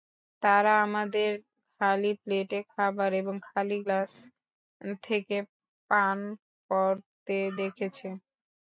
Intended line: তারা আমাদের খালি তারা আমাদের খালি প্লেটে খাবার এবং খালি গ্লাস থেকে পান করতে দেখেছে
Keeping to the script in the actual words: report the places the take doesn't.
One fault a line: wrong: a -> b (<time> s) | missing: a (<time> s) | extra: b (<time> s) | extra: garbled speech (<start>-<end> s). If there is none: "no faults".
missing: তারা আমাদের খালি (2.1 s)